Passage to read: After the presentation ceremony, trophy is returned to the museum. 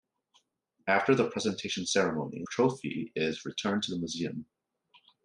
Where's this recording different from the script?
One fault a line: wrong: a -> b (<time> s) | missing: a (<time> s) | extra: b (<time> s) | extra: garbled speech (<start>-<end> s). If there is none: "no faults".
no faults